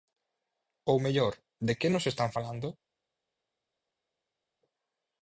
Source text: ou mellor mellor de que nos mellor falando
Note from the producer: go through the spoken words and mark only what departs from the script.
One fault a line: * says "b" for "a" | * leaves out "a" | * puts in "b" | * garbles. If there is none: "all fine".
* leaves out "mellor"
* says "están" for "mellor"